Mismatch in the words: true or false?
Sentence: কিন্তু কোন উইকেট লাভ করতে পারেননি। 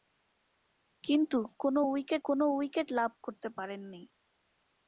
true